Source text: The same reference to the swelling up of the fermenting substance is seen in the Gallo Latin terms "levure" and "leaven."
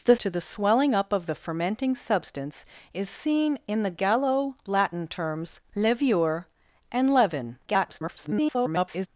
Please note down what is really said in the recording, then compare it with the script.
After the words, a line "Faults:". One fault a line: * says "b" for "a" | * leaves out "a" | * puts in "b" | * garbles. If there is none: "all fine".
The to the swelling up of the fermenting substance is seen in the Gallo Latin terms "levure" and "leaven." [garbled]
Faults:
* leaves out "same reference"
* garbles